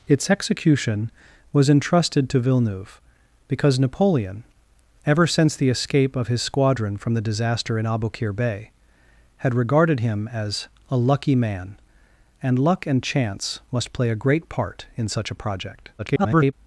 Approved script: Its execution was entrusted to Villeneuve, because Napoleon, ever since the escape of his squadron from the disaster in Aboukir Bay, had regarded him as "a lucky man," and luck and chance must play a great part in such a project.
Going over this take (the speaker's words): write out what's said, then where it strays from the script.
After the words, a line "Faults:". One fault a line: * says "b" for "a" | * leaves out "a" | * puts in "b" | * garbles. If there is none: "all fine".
Its execution was entrusted to Villeneuve, because Napoleon, ever since the escape of his squadron from the disaster in Aboukir Bay, had regarded him as "a lucky man," and luck and chance must play a great part in such a project. [garbled]
Faults:
* garbles